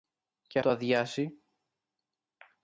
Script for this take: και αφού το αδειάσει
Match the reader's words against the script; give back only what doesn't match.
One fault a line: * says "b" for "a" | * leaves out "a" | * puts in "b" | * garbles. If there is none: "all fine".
* leaves out "αφού"